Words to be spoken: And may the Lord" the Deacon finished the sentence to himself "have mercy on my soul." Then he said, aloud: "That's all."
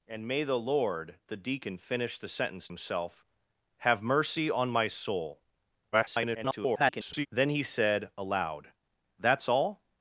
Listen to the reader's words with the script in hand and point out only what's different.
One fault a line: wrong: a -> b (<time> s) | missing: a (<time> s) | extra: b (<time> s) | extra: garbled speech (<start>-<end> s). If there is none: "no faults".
missing: to (2.7 s)
extra: garbled speech (5.9-7.3 s)